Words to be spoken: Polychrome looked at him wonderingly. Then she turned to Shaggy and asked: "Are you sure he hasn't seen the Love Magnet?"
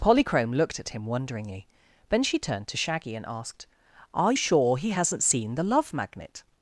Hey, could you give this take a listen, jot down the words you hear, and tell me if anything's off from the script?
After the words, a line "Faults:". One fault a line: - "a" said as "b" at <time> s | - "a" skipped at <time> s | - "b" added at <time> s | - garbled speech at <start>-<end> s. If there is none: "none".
Polychrome looked at him wonderingly. Then she turned to Shaggy and asked: "Are sure he hasn't seen the Love Magnet?"
Faults:
- "you" skipped at 4.3 s